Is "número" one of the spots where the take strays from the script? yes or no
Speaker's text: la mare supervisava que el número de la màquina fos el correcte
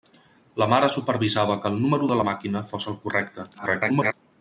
no